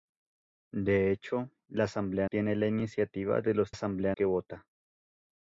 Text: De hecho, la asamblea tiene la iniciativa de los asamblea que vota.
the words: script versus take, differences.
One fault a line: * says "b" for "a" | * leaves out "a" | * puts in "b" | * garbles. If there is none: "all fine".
all fine